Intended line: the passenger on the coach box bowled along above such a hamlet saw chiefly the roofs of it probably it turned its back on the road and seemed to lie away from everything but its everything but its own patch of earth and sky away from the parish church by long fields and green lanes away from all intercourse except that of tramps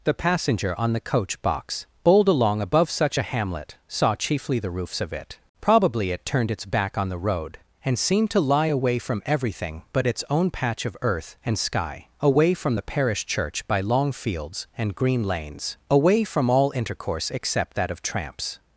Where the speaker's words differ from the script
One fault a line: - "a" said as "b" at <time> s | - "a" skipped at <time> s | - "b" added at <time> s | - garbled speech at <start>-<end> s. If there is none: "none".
- "everything but its" skipped at 10.2 s